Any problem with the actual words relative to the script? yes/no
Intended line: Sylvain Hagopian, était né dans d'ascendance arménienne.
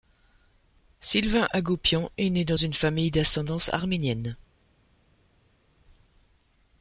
yes